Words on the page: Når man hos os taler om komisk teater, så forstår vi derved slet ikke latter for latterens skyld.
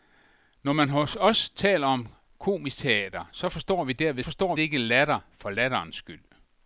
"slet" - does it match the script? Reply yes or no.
no